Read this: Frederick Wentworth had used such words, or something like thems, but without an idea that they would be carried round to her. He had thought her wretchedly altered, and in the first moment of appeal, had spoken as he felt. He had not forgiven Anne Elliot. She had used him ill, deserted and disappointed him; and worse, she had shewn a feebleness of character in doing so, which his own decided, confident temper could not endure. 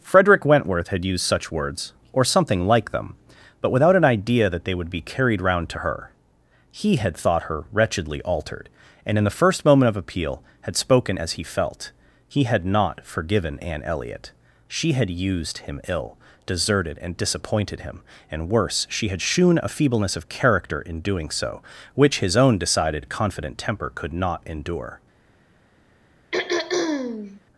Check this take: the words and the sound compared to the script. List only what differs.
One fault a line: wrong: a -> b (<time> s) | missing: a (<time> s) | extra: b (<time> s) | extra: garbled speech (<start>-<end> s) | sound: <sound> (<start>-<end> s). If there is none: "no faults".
wrong: thems -> them (2.9 s)
sound: throat clearing (26.3-27.4 s)